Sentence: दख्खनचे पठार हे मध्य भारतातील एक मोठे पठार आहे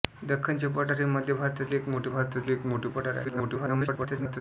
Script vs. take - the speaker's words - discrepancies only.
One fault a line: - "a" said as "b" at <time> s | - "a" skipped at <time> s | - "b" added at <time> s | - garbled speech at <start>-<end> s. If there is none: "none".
- "भारतातील एक मोठे" added at 2.1 s
- garbled speech at 3.2-4.4 s